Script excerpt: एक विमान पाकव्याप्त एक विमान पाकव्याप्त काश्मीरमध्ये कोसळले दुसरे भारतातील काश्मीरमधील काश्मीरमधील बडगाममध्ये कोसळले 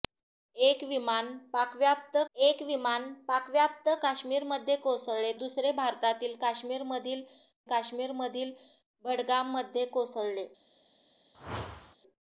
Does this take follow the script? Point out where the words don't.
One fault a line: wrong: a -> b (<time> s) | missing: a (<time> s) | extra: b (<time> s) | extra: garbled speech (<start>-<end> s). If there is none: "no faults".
no faults